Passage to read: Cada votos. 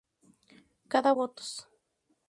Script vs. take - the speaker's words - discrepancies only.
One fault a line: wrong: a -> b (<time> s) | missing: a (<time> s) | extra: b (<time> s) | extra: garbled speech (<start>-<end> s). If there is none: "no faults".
no faults